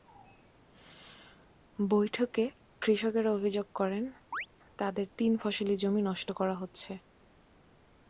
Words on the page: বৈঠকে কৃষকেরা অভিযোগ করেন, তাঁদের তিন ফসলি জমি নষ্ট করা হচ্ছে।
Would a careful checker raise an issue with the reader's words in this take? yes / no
no